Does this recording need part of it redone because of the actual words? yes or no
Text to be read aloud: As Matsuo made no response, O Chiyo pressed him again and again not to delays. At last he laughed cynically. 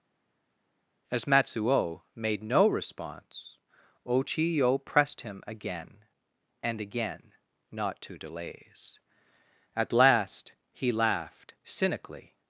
no